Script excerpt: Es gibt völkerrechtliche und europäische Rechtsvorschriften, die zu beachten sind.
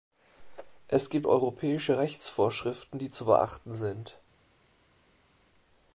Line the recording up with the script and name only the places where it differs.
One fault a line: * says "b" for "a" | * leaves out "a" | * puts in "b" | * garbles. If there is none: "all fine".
* leaves out "völkerrechtliche und"